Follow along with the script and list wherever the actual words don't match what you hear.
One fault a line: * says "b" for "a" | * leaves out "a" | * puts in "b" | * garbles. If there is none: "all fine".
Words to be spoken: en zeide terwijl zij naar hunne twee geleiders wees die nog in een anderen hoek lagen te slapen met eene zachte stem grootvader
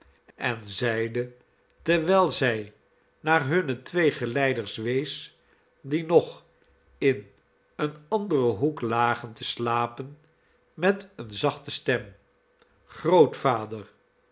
all fine